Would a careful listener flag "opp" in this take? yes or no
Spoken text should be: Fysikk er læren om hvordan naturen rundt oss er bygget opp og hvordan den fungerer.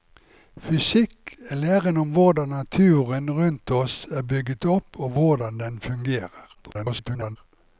no